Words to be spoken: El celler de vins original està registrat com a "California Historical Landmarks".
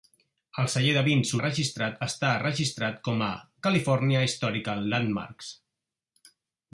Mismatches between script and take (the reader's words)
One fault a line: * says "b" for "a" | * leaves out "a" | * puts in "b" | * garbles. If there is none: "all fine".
* says "registrat" for "original"